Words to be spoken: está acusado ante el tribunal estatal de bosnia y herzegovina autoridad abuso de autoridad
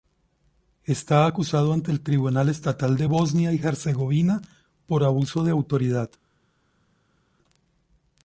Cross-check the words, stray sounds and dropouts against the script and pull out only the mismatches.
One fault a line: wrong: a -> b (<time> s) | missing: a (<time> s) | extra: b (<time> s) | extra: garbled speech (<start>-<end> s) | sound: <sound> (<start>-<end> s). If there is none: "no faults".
wrong: autoridad -> por (4.9 s)